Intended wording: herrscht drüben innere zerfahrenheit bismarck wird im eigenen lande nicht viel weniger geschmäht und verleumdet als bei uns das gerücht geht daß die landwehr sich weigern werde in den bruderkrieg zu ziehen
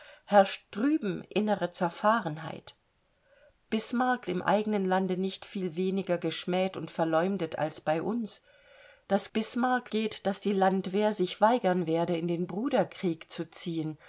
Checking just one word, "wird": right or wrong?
wrong